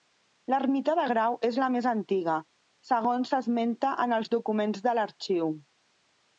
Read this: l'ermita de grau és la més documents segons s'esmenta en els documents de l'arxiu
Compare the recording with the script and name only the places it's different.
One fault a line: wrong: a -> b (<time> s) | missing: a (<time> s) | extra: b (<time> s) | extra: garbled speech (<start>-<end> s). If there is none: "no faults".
wrong: documents -> antiga (1.9 s)